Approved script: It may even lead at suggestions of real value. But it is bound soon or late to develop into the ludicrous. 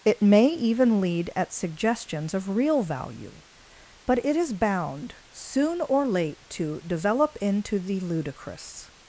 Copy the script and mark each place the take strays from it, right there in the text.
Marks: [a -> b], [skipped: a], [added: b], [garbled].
It may even lead at suggestions of real value. But it is bound soon or late to develop into the ludicrous.